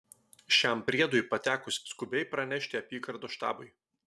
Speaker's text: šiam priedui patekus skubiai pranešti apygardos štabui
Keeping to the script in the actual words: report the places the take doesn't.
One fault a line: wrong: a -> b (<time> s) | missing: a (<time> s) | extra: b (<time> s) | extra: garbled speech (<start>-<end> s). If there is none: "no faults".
no faults